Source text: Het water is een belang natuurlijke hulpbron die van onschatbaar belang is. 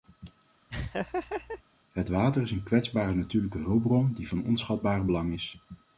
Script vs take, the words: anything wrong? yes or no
yes